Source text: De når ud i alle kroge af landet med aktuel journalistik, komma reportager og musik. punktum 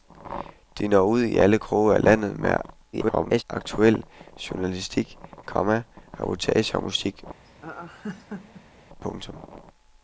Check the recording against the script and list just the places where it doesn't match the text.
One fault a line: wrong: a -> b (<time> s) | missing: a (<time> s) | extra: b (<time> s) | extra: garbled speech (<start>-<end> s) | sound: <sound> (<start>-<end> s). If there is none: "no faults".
extra: garbled speech (2.9-3.4 s)
sound: laugh (7.4-8.8 s)